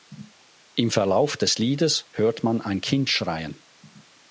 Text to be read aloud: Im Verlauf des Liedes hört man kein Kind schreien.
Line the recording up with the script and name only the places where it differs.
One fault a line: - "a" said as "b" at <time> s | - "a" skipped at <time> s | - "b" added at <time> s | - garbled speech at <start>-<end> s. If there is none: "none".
- "kein" said as "ein" at 2.6 s